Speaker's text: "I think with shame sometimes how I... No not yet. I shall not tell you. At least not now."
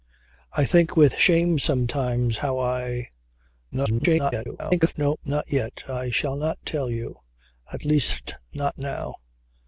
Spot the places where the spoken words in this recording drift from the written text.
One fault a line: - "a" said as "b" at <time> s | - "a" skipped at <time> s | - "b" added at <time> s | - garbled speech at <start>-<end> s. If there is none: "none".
- garbled speech at 3.7-4.9 s